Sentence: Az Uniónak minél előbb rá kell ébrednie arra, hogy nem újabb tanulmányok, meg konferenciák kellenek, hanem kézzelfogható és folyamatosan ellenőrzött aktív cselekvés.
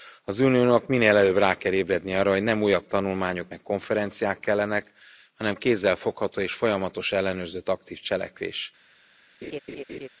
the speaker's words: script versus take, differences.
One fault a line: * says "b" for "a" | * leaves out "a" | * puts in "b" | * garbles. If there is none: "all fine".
all fine